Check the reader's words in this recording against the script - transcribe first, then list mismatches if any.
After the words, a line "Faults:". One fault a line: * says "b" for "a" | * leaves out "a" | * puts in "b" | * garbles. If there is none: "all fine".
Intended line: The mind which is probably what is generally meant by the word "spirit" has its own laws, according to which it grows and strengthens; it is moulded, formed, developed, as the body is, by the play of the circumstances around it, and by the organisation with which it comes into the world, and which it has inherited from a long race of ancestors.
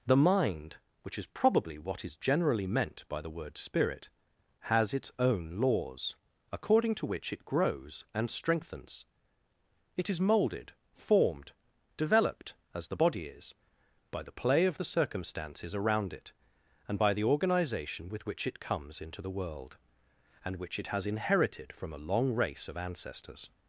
The mind which is probably what is generally meant by the word "spirit" has its own laws, according to which it grows and strengthens; it is moulded, formed, developed, as the body is, by the play of the circumstances around it, and by the organisation with which it comes into the world, and which it has inherited from a long race of ancestors.
Faults:
all fine